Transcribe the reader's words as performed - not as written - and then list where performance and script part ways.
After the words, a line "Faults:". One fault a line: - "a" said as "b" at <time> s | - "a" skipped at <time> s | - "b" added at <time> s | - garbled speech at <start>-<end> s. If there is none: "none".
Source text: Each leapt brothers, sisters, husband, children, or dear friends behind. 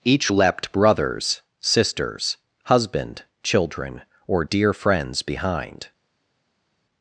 Each leapt brothers, sisters, husband, children, or dear friends behind.
Faults:
none